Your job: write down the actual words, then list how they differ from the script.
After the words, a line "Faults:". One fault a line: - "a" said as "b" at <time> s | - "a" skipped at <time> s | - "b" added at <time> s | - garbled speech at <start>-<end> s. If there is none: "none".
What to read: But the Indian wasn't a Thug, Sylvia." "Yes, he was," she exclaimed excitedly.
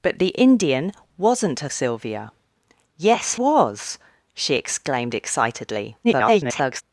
But the Indian wasn't a Sylvia." "Yes, was," she exclaimed excitedly. [garbled]
Faults:
- "Thug" skipped at 1.7 s
- "he" skipped at 3.3 s
- garbled speech at 6.0-6.8 s